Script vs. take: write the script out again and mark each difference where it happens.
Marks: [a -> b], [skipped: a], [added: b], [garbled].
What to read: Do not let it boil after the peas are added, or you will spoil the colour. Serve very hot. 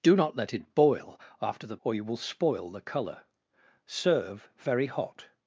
Do not let it boil after the [skipped: peas are added,] or you will spoil the colour. Serve very hot.